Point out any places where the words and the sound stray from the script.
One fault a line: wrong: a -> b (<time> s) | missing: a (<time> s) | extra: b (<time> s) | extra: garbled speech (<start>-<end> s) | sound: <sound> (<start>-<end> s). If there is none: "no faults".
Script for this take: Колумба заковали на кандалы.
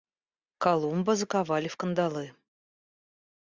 wrong: на -> в (1.7 s)